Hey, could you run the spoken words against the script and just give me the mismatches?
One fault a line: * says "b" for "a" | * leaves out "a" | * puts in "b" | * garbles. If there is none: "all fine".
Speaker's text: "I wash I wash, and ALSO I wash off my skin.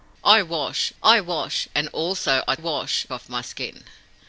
all fine